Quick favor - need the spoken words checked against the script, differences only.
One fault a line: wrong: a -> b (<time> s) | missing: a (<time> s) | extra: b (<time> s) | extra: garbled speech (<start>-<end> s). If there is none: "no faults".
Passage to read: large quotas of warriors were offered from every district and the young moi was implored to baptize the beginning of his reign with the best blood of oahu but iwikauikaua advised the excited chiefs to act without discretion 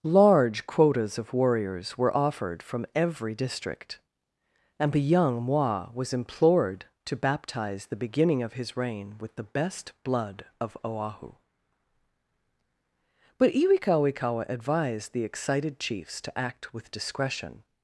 wrong: without -> with (16.7 s)